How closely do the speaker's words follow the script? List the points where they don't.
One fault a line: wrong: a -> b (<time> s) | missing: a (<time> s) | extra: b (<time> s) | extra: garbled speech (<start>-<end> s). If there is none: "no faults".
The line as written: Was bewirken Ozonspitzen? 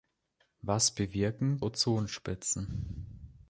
no faults